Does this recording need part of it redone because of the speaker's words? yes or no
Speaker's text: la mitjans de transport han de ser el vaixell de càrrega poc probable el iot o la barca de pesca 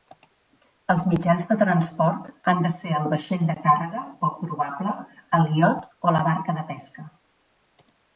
yes